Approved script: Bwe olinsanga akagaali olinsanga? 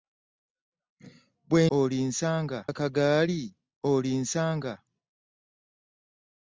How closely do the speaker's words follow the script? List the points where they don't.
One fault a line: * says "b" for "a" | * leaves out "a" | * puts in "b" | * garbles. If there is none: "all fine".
all fine